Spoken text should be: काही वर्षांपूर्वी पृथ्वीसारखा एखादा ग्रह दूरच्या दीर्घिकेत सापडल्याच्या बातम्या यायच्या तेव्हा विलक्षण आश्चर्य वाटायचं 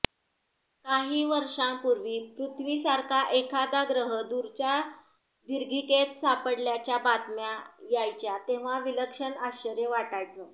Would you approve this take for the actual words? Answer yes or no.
yes